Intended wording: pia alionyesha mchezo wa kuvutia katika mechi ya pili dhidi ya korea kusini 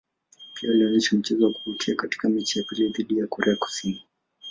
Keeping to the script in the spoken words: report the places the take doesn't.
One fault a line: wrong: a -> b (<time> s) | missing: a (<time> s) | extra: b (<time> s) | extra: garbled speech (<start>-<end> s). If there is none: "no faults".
no faults